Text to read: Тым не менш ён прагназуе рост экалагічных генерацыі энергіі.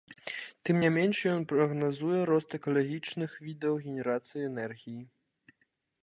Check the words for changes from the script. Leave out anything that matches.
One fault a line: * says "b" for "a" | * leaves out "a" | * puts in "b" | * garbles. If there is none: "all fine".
* puts in "відаў"